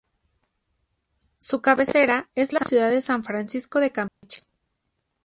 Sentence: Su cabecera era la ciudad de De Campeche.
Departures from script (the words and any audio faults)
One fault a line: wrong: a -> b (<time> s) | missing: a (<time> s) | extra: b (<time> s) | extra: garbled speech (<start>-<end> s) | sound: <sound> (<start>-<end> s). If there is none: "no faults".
wrong: era -> es (2.3 s)
extra: San Francisco (3.0 s)
sound: dropout (4.1-4.2 s)